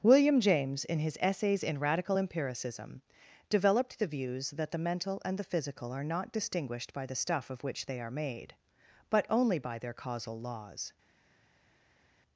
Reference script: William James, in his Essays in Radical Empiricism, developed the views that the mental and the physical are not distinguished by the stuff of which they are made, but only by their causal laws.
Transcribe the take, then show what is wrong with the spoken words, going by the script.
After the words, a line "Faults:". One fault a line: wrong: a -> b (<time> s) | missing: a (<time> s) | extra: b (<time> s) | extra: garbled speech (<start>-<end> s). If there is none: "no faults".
William James, in his Essays in Radical Empiricism, developed the views that the mental and the physical are not distinguished by the stuff of which they are made, but only by their causal laws.
Faults:
no faults